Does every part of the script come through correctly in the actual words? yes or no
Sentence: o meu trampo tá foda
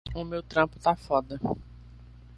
yes